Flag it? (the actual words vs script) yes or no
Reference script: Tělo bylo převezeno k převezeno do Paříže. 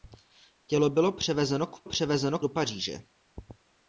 no